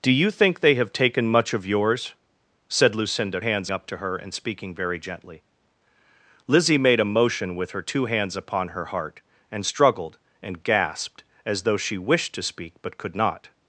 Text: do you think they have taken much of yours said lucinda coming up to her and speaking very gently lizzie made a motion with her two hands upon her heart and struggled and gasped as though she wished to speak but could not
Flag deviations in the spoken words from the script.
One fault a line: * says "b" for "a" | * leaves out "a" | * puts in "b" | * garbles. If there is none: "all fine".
* says "hands" for "coming"